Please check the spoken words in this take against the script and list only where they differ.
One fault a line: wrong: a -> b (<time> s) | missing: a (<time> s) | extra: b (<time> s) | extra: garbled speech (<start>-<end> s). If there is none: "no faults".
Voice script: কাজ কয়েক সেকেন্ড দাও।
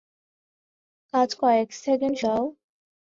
no faults